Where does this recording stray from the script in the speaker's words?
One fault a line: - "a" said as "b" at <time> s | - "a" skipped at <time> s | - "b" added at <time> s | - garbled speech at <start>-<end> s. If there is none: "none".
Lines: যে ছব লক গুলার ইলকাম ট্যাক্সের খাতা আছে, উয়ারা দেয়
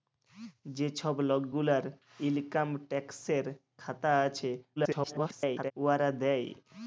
- garbled speech at 4.8-5.7 s